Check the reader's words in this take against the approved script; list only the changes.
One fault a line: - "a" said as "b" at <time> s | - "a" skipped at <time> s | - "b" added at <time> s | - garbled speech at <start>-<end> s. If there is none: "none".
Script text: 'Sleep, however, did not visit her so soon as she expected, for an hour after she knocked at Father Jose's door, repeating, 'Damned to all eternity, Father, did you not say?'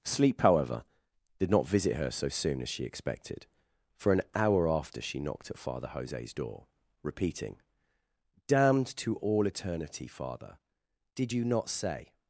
none